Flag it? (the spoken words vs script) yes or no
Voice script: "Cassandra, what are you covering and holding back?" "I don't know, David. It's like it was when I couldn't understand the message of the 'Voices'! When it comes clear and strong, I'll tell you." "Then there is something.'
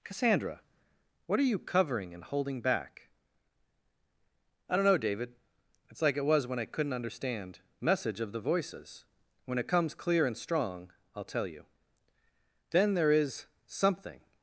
yes